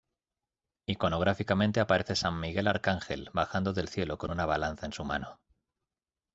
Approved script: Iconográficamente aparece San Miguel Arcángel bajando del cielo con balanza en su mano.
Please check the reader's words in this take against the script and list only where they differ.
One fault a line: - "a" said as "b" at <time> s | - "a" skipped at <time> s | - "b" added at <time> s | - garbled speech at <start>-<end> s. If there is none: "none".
- "una" added at 4.3 s